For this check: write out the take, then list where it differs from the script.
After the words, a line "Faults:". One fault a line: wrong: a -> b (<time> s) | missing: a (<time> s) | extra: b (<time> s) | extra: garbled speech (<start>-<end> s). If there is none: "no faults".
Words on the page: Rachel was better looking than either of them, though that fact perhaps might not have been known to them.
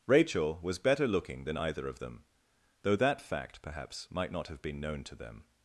Rachel was better looking than either of them, though that fact perhaps might not have been known to them.
Faults:
no faults